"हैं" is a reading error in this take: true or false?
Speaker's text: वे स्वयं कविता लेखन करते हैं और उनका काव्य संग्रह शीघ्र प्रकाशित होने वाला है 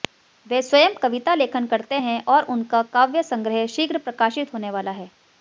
false